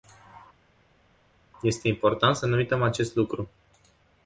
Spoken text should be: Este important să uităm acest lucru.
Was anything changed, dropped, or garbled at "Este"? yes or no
no